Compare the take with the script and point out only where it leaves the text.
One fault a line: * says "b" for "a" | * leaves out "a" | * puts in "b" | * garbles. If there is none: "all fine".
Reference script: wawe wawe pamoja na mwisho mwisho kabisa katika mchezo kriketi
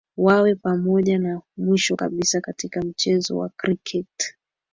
* leaves out "wawe"
* leaves out "mwisho"
* puts in "wa"